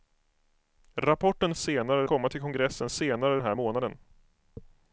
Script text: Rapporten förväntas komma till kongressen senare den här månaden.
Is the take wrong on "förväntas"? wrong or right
wrong